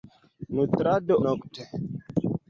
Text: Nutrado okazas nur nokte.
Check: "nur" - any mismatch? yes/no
yes